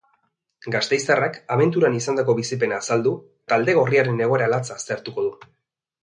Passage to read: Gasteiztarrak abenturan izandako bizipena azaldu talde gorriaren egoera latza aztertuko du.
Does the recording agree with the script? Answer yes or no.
yes